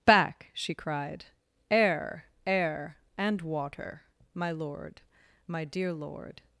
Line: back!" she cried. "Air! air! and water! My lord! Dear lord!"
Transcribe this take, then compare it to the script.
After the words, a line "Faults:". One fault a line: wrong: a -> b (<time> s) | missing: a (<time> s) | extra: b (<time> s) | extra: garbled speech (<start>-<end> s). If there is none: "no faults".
back!" she cried. "Air! air! and water! My lord! My dear lord!"
Faults:
extra: My (5.5 s)